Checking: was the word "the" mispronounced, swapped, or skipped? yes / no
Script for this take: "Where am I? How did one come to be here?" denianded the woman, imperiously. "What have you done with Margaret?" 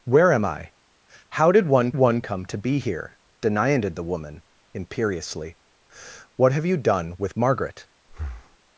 no